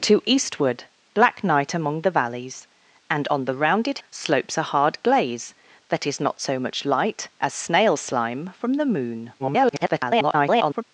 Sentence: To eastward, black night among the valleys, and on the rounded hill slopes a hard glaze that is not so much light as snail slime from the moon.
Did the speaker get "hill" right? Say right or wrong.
wrong